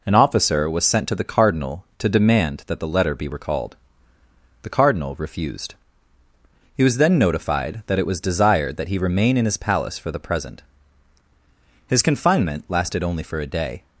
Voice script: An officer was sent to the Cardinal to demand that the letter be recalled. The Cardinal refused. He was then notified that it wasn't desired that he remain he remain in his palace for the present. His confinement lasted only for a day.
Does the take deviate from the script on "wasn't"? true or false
true